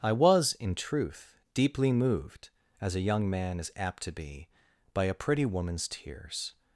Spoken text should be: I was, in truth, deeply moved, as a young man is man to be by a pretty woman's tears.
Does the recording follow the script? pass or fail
fail